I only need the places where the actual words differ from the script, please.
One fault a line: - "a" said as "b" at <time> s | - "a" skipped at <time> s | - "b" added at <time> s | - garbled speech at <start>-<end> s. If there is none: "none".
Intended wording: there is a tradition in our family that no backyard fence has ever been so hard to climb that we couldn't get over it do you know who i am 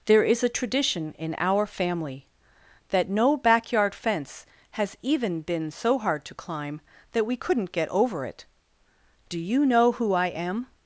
- "ever" said as "even" at 5.0 s